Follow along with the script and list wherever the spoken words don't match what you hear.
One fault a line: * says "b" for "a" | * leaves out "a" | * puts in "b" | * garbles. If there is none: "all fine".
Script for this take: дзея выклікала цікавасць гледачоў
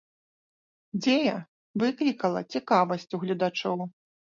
* puts in "у"